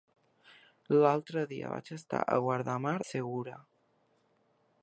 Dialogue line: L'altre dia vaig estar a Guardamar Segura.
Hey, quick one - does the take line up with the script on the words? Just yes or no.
yes